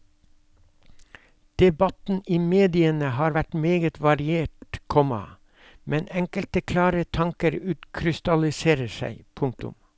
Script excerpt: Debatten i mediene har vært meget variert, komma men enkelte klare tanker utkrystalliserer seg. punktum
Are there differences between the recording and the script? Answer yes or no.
no